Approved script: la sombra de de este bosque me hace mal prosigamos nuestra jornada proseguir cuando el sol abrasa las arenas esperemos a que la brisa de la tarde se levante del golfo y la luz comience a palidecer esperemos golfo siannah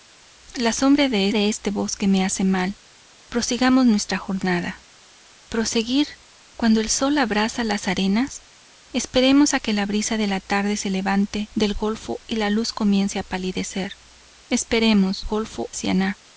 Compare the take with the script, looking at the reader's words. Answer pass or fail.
pass